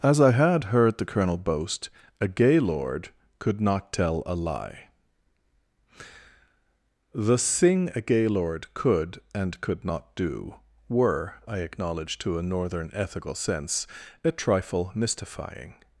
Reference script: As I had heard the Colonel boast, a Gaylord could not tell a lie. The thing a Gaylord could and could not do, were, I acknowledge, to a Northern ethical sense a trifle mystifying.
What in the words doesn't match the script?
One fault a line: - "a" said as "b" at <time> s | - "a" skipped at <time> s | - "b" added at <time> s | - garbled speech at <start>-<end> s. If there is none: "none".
none